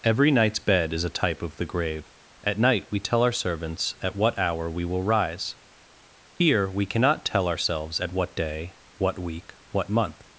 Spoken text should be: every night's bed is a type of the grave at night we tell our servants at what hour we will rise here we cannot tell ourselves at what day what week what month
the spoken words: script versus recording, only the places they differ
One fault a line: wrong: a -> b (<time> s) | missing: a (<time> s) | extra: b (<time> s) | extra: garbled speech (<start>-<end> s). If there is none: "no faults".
no faults